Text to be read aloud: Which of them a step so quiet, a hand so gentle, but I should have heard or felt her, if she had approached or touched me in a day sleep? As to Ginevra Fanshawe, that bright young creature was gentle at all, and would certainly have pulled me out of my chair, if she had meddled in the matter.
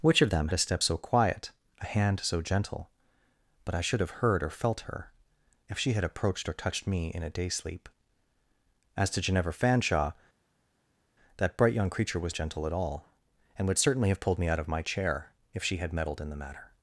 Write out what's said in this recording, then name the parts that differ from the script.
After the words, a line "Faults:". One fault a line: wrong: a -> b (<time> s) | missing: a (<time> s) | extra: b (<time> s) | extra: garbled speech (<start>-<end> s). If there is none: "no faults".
Which of them a step so quiet, a hand so gentle, but I should have heard or felt her, if she had approached or touched me in a day sleep? As to Ginevra Fanshawe, that bright young creature was gentle at all, and would certainly have pulled me out of my chair, if she had meddled in the matter.
Faults:
no faults